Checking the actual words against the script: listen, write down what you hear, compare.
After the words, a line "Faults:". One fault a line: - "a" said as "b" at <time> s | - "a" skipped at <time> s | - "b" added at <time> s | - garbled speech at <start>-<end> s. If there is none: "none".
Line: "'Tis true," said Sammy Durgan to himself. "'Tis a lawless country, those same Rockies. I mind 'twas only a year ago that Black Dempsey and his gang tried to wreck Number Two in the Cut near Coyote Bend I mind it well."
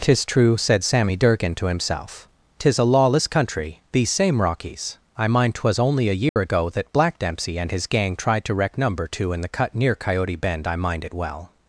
"'Tis true," said Sammy Durgan to himself. "'Tis a lawless country, these same Rockies. I mind 'twas only a year ago that Black Dempsey and his gang tried to wreck Number Two in the Cut near Coyote Bend I mind it well."
Faults:
- "those" said as "these" at 3.9 s